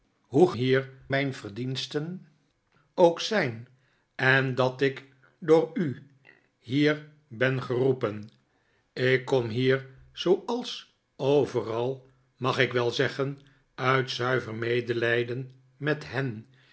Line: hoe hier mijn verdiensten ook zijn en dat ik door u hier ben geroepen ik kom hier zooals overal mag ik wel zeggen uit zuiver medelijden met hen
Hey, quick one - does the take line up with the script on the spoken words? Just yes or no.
yes